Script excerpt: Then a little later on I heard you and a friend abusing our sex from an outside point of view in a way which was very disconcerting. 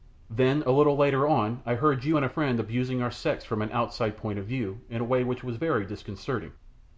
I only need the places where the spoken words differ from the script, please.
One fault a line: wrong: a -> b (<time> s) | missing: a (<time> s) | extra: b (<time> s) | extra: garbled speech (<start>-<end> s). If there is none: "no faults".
no faults